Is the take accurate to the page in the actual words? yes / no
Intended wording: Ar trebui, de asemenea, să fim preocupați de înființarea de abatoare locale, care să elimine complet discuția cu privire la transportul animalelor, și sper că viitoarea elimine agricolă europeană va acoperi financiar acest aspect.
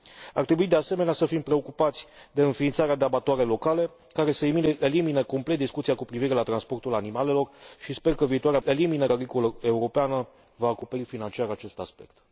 yes